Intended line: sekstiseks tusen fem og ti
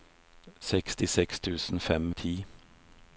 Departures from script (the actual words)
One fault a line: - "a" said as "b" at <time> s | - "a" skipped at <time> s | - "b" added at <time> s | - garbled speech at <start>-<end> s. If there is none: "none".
none